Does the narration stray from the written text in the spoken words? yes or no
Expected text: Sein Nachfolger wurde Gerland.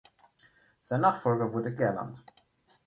no